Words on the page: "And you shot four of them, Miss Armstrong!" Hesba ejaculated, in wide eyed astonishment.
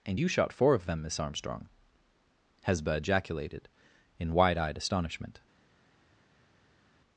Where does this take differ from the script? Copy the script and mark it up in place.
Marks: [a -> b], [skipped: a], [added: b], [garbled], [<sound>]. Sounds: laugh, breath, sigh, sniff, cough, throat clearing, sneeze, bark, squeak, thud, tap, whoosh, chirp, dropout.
"And you shot four of them, Miss Armstrong!" Hesba ejaculated, in wide eyed astonishment.